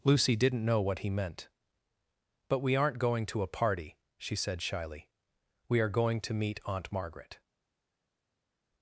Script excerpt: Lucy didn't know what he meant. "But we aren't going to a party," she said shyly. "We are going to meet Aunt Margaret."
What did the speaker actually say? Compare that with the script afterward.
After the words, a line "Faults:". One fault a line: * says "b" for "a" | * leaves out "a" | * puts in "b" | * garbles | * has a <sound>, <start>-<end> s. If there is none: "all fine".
Lucy didn't know what he meant. "But we aren't going to a party," she said shyly. "We are going to meet Aunt Margaret."
Faults:
all fine